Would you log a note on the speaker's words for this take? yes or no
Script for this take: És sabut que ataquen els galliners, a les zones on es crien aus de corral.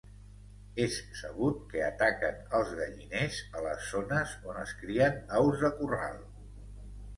no